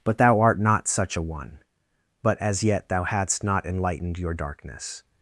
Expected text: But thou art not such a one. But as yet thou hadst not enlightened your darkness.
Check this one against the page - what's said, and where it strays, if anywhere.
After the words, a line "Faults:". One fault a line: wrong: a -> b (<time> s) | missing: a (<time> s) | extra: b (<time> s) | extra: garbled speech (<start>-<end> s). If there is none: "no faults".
But thou art not such a one. But as yet thou hadst not enlightened your darkness.
Faults:
no faults